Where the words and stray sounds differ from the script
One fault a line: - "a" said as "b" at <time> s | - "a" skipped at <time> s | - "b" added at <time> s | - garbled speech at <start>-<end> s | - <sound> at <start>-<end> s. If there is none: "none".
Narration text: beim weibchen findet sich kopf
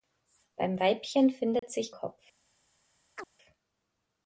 - dropout at 1.6-1.6 s
- chirp at 3.2-3.3 s